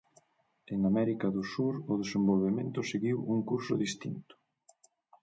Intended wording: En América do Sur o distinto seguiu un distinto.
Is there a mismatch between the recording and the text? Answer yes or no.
yes